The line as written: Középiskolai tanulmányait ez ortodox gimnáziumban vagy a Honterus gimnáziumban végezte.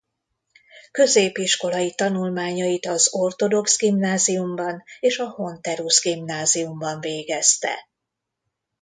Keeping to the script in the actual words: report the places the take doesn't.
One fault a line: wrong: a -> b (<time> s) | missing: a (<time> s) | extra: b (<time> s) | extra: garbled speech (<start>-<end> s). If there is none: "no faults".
wrong: ez -> az (2.9 s)
wrong: vagy -> és (5.0 s)